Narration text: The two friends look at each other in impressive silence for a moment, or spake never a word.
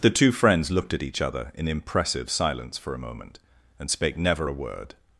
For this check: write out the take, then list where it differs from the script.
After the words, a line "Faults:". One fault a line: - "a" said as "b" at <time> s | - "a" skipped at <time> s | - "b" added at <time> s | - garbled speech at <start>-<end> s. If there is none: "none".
The two friends looked at each other in impressive silence for a moment, and spake never a word.
Faults:
- "look" said as "looked" at 0.7 s
- "or" said as "and" at 3.8 s